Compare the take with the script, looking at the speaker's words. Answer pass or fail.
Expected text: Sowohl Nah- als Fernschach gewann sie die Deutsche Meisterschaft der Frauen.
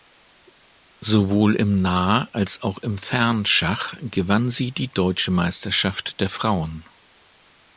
fail